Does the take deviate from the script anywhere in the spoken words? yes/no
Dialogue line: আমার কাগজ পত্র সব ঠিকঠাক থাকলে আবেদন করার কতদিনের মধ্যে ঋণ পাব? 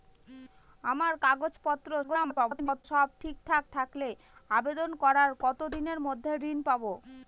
yes